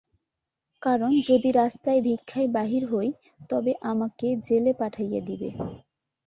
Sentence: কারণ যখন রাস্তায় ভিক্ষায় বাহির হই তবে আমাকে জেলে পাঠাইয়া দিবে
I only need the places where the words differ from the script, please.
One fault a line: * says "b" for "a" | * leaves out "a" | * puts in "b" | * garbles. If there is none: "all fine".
* says "যদি" for "যখন"